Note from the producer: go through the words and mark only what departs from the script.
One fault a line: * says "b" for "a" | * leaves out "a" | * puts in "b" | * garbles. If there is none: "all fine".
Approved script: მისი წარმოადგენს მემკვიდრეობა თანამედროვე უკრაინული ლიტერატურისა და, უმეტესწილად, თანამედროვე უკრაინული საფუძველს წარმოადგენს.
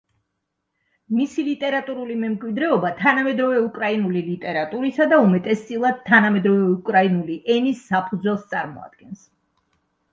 * says "ლიტერატურული" for "წარმოადგენს"
* puts in "ენის"